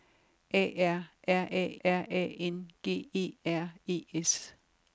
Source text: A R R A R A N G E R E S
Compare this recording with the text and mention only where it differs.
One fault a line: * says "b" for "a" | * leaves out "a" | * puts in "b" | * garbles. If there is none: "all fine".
all fine